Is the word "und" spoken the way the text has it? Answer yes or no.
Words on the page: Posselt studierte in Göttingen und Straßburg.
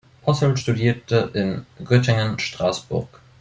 no